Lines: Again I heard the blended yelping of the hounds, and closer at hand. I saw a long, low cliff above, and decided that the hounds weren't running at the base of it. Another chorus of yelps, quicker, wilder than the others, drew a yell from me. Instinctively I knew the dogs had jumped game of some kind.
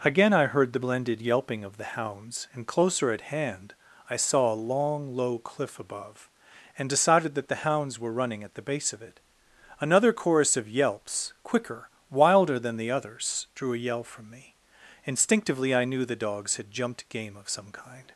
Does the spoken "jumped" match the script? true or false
true